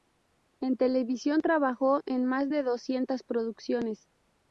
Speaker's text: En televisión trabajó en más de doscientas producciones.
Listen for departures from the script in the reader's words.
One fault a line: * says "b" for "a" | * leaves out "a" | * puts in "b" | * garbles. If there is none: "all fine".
all fine